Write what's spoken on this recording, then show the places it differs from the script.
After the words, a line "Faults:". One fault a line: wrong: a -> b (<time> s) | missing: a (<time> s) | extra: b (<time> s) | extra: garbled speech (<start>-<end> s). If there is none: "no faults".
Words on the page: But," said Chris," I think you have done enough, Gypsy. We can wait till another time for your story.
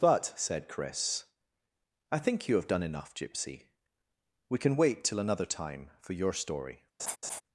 But," said Chris," I think you have done enough, Gypsy. We can wait till another time for your story.
Faults:
no faults